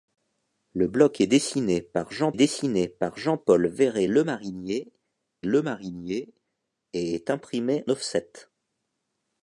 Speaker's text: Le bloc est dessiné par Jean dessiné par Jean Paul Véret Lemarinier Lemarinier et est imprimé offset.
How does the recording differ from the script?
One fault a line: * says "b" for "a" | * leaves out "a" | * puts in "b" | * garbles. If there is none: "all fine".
all fine